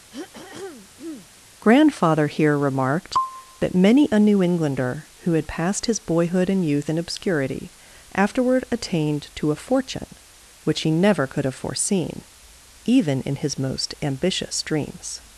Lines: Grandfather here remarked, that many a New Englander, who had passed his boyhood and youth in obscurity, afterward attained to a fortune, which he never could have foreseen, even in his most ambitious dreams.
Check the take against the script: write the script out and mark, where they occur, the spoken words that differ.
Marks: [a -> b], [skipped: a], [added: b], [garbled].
Grandfather here remarked, that many a New Englander, who had passed his boyhood and youth in obscurity, afterward attained to a fortune, which he never could have foreseen, even in his most ambitious dreams.